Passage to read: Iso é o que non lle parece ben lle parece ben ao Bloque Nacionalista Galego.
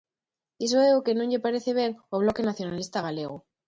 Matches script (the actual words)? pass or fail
fail